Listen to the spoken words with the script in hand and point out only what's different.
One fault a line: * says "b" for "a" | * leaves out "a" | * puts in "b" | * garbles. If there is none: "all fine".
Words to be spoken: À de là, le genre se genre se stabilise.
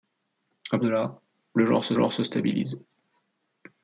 all fine